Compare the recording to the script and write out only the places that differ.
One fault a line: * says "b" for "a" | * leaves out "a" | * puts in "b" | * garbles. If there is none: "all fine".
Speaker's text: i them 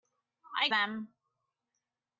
all fine